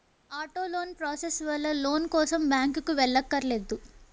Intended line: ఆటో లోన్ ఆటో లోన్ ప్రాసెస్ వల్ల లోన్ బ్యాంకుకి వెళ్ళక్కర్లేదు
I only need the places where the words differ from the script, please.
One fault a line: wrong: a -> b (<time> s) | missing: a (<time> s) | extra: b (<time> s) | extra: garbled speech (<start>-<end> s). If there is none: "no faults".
missing: ఆటో లోన్ (0.9 s)
extra: కోసం (2.1 s)